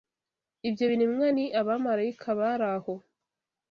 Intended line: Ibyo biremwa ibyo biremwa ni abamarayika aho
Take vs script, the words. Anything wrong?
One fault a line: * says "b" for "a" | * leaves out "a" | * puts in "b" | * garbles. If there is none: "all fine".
* leaves out "ibyo biremwa"
* puts in "bari"